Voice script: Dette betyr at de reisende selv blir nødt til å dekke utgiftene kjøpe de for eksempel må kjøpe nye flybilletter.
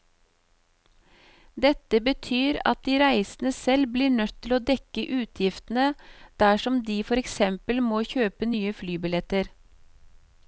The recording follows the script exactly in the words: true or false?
false